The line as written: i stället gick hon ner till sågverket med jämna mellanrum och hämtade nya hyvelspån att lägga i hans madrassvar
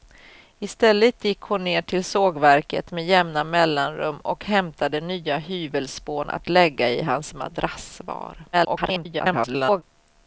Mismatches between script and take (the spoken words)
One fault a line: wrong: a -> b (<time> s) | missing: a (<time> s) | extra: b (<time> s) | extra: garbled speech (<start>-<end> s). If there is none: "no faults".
extra: garbled speech (8.5-9.8 s)